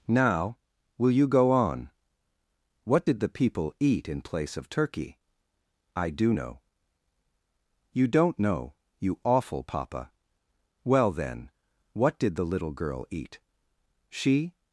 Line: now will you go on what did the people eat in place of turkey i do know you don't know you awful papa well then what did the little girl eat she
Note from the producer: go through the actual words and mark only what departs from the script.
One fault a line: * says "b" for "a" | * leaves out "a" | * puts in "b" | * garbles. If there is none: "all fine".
all fine